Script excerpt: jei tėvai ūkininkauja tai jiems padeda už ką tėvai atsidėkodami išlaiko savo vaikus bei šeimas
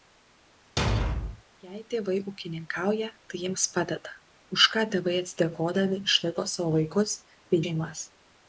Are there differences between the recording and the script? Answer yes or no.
no